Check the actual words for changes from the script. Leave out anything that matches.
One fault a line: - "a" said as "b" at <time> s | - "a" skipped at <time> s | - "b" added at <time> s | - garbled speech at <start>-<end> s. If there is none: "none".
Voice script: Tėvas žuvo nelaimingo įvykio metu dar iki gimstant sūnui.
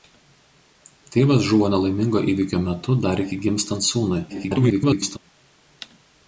- garbled speech at 4.3-5.2 s